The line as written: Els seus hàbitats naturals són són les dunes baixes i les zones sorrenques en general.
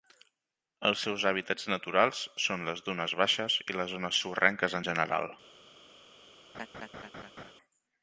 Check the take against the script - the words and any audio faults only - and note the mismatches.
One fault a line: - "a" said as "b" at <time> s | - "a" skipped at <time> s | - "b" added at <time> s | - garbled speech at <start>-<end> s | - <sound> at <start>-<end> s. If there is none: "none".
- "són" skipped at 2.6 s
- laugh at 6.5-7.5 s